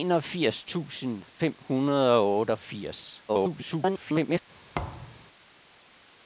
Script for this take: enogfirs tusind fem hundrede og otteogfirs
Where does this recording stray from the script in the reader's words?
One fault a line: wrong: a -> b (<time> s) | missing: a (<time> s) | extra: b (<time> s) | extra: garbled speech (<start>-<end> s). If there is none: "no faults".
extra: garbled speech (3.3-4.4 s)